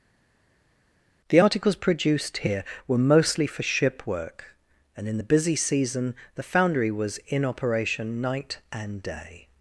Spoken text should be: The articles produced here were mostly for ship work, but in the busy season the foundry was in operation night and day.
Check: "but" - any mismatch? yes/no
yes